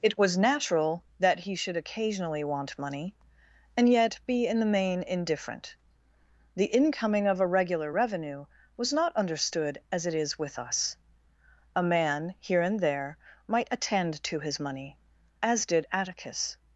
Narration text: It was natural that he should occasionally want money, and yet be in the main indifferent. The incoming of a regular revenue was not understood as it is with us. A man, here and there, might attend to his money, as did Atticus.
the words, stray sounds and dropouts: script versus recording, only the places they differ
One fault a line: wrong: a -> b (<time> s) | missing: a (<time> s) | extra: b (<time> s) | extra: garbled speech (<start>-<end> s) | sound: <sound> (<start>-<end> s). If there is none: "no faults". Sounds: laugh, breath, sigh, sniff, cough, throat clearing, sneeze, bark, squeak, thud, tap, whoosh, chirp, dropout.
no faults